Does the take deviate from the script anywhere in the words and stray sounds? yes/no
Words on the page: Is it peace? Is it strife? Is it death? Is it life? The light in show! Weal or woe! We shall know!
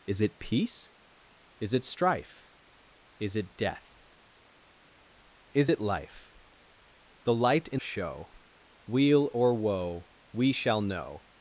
no